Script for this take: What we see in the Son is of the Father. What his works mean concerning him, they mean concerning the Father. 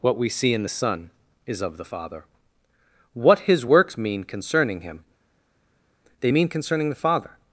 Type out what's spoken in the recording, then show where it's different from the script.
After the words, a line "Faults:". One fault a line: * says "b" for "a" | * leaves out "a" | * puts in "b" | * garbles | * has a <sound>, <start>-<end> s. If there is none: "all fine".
What we see in the Son is of the Father. What his works mean concerning him, they mean concerning the Father.
Faults:
all fine